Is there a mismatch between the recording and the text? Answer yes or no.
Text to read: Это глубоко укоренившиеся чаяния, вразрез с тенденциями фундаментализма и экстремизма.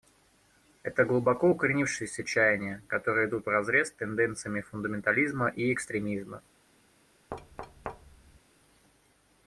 yes